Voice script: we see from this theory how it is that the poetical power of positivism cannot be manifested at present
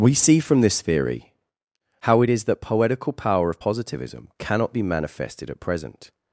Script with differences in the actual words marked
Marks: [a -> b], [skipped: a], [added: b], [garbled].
we see from this theory how it is that [skipped: the] poetical power of positivism cannot be manifested at present